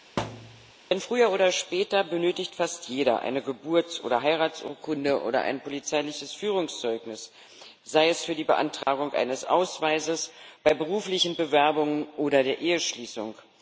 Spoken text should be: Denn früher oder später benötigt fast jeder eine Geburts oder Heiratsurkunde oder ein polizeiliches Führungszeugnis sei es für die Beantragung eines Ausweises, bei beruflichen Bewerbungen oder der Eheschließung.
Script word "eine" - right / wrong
right